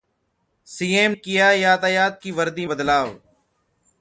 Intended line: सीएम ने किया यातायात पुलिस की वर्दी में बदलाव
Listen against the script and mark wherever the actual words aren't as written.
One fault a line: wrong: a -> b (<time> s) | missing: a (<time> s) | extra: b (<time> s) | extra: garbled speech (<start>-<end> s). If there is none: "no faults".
missing: ने (1.1 s)
missing: पुलिस (2.2 s)
missing: में (2.6 s)